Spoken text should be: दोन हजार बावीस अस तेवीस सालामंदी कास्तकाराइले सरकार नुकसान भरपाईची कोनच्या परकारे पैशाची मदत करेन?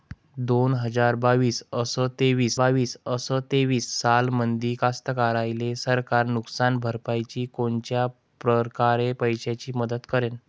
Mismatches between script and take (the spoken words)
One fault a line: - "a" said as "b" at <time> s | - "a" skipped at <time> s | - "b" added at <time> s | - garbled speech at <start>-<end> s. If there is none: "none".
- "बावीस अस तेवीस" added at 2.6 s